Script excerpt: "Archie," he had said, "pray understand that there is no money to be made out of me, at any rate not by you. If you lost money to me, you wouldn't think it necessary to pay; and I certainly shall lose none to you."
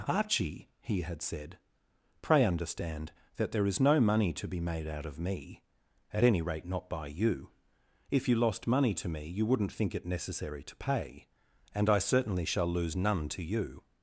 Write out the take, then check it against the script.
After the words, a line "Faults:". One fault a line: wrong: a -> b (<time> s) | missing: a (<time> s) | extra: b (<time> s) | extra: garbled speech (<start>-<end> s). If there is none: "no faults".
"Archie," he had said, "pray understand that there is no money to be made out of me, at any rate not by you. If you lost money to me, you wouldn't think it necessary to pay; and I certainly shall lose none to you."
Faults:
no faults